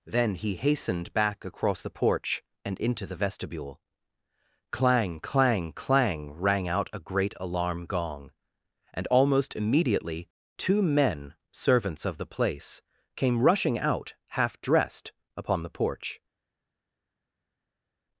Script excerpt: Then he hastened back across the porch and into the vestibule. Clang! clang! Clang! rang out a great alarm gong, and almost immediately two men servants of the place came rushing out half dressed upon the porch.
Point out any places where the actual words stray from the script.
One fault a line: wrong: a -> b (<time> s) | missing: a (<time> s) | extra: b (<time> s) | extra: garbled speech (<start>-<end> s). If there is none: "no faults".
no faults